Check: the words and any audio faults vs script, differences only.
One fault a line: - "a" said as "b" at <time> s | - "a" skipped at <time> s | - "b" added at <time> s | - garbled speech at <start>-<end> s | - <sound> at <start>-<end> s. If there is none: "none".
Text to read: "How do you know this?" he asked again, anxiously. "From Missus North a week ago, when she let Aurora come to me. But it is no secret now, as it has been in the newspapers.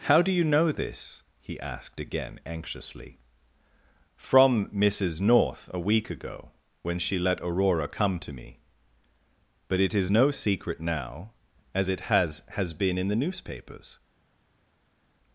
- "has" added at 12.5 s